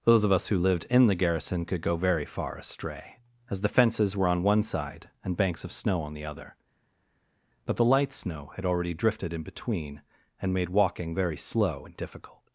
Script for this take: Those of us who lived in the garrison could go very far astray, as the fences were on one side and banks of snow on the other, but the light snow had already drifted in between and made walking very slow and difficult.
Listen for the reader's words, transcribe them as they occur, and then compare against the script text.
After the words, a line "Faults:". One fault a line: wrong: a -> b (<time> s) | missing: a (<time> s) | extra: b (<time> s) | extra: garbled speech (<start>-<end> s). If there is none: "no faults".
Those of us who lived in the garrison could go very far astray, as the fences were on one side and banks of snow on the other, but the light snow had already drifted in between and made walking very slow and difficult.
Faults:
no faults